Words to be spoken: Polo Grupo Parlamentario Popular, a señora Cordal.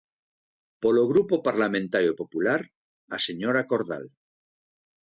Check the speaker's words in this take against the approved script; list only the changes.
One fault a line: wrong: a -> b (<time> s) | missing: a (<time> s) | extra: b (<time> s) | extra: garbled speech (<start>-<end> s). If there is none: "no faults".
no faults